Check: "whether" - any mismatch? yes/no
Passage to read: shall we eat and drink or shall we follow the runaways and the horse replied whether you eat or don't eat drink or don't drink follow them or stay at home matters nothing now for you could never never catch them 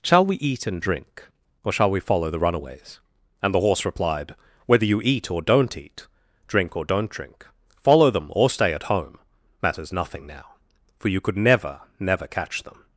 no